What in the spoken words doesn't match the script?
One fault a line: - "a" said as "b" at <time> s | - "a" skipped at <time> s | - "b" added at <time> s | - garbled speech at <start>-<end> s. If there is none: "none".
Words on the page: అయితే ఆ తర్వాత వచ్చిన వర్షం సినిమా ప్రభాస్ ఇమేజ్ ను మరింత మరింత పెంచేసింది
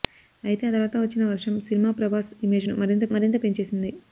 none